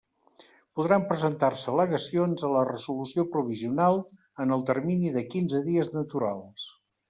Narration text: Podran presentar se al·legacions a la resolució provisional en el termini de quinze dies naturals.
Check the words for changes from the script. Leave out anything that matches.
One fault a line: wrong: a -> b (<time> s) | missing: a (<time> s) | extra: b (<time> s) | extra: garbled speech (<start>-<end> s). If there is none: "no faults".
no faults